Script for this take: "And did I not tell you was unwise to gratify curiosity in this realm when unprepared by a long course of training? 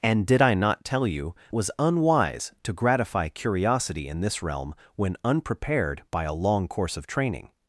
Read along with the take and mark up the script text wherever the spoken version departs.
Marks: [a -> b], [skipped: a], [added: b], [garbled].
"And did I not tell you was unwise to gratify curiosity in this realm when unprepared by a long course of training?